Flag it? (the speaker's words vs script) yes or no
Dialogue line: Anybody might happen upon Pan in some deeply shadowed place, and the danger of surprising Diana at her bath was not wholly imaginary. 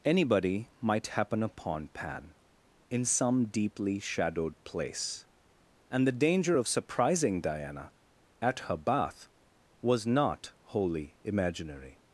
no